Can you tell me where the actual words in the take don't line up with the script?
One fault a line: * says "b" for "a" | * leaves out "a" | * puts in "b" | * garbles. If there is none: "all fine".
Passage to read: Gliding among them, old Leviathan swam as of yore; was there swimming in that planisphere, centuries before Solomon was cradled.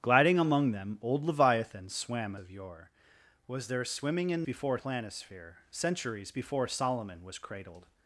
* leaves out "as"
* says "before" for "that"